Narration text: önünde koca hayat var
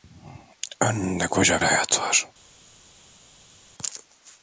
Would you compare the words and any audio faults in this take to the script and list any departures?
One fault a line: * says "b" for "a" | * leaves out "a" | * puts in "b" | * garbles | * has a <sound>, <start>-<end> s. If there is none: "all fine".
all fine